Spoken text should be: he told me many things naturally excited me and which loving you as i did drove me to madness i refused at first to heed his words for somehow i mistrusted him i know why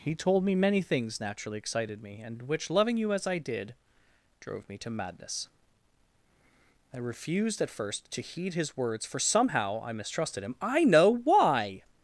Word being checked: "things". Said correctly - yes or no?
yes